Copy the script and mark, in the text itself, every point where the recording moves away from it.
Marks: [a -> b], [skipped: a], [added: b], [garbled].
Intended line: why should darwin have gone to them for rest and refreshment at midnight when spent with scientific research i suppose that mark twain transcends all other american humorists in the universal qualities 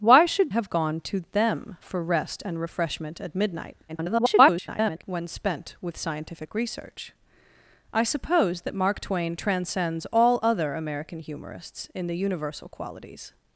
why should [skipped: darwin] have gone to them for rest and refreshment at midnight [garbled] when spent with scientific research i suppose that mark twain transcends all other american humorists in the universal qualities